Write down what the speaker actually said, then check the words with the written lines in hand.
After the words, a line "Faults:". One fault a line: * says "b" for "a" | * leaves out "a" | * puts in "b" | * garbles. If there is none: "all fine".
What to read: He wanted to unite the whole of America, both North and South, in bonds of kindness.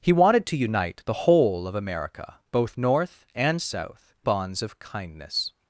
He wanted to unite the whole of America, both North and South, bonds of kindness.
Faults:
* leaves out "in"